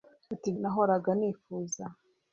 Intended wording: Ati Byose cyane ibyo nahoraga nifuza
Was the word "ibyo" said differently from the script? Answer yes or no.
yes